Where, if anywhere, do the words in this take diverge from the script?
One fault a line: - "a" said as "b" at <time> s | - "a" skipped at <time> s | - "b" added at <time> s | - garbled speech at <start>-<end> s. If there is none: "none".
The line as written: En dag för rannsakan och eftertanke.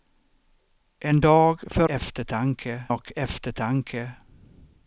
- "rannsakan" said as "eftertanke" at 1.9 s